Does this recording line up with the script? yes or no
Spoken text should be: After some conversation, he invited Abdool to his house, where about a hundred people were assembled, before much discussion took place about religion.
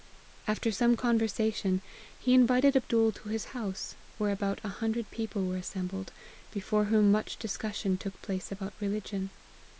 no